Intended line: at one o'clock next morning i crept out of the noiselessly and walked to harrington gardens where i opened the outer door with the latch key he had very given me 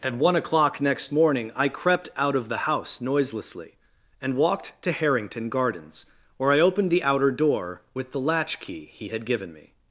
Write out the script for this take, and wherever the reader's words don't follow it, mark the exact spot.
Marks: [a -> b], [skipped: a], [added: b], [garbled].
at one o'clock next morning i crept out of the [added: house] noiselessly and walked to harrington gardens where i opened the outer door with the latch key he had [skipped: very] given me